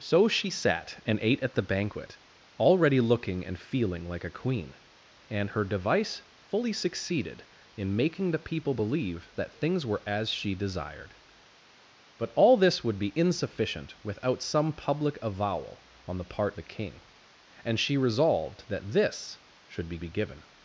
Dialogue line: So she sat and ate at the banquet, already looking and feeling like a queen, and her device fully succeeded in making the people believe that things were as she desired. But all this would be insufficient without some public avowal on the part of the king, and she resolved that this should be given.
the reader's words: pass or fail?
fail